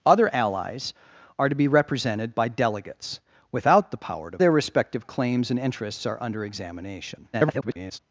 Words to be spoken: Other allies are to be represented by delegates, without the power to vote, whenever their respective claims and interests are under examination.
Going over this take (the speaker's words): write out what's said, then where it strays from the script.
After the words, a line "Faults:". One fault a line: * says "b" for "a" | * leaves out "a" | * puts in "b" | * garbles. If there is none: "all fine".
Other allies are to be represented by delegates, without the power to their respective claims and interests are under examination. [garbled]
Faults:
* leaves out "vote whenever"
* garbles